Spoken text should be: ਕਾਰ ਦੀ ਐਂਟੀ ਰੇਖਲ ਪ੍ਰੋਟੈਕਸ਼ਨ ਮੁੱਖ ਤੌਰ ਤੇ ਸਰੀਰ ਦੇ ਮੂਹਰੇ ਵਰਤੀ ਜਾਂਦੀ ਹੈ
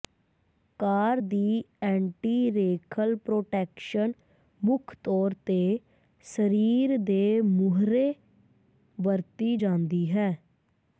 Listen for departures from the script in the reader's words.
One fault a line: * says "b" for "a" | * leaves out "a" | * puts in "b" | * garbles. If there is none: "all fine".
all fine